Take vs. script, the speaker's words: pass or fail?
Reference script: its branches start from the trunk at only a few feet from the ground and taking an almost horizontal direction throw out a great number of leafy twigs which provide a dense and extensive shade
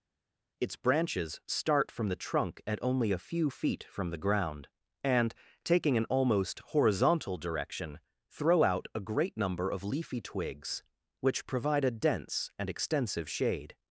pass